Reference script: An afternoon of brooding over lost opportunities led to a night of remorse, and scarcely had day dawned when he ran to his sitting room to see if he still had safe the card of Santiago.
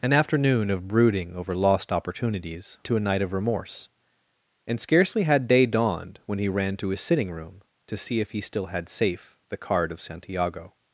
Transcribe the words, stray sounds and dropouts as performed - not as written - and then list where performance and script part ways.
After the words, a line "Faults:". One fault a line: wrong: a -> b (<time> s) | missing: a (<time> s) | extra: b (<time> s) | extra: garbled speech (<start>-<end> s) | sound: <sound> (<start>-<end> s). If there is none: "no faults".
An afternoon of brooding over lost opportunities to a night of remorse, and scarcely had day dawned when he ran to his sitting room to see if he still had safe the card of Santiago.
Faults:
missing: led (2.8 s)